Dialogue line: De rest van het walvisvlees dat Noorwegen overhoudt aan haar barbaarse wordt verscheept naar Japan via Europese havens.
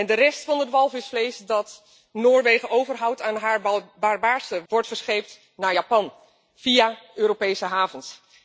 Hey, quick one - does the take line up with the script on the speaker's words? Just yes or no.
yes